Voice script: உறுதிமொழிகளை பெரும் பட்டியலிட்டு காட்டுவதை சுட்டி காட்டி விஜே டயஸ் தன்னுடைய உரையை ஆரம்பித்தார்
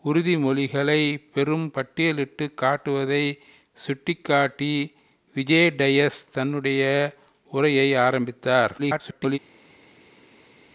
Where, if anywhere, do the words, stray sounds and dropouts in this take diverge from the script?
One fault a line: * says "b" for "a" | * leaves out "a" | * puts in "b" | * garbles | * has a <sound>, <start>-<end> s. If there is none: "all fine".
* garbles